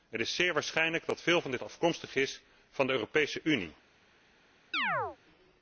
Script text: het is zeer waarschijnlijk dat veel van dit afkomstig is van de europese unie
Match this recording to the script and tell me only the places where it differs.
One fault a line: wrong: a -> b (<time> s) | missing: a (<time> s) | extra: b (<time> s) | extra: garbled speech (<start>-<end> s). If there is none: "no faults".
no faults